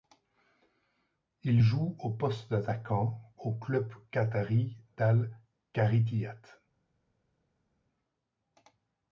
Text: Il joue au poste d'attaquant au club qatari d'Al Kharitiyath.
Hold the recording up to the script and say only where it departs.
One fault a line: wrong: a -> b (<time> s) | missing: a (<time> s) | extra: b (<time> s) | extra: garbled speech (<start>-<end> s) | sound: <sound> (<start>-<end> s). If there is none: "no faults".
no faults